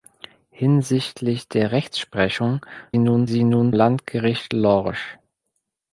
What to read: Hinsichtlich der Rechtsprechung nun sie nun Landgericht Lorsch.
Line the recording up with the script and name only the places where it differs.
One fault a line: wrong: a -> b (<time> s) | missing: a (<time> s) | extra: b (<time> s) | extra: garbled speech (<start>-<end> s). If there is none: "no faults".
no faults